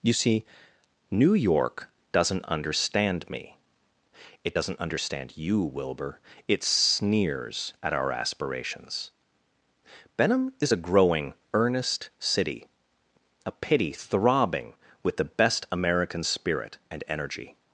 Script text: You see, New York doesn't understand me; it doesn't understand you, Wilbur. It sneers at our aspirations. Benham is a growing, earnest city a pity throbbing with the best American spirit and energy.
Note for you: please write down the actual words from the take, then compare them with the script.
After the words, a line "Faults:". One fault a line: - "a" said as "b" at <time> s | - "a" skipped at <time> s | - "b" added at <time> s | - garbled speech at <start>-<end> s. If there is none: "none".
You see, New York doesn't understand me; it doesn't understand you, Wilbur. It sneers at our aspirations. Benham is a growing, earnest city a pity throbbing with the best American spirit and energy.
Faults:
none